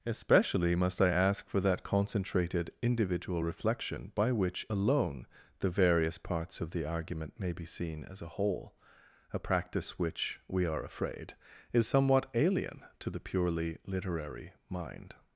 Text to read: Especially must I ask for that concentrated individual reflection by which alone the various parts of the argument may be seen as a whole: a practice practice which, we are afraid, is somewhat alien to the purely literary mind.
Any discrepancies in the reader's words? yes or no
yes